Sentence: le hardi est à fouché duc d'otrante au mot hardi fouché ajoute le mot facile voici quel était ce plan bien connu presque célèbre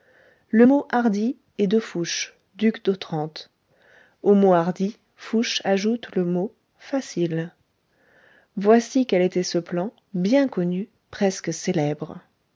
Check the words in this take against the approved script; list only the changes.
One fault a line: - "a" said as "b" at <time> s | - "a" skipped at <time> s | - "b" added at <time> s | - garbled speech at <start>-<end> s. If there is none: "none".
- "mot" added at 0.6 s
- "à" said as "de" at 1.7 s